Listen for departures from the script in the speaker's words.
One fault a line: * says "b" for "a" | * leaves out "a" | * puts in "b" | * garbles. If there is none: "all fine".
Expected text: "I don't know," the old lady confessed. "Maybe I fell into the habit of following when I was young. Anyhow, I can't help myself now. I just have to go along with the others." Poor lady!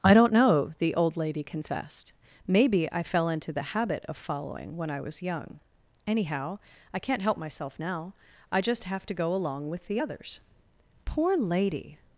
all fine